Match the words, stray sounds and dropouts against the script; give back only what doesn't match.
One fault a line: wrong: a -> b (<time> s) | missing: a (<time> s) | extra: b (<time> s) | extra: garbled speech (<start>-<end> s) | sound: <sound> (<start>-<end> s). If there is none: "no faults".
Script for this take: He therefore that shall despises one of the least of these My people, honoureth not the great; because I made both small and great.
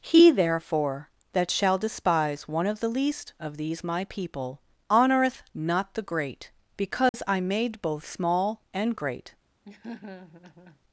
wrong: despises -> despise (1.8 s)
sound: dropout (7.1-7.1 s)
sound: laugh (9.6-10.8 s)